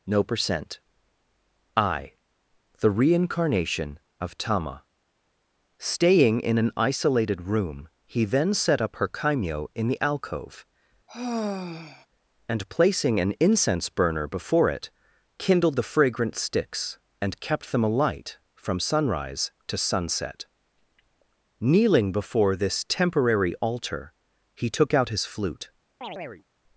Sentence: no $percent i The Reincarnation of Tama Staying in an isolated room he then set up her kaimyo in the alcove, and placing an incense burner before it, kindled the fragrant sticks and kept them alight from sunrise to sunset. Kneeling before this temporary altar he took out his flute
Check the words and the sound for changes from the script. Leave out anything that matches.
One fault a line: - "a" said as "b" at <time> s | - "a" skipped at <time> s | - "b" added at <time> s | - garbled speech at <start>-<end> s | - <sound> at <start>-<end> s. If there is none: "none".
- sigh at 11.1-12.1 s
- chirp at 26.0-26.4 s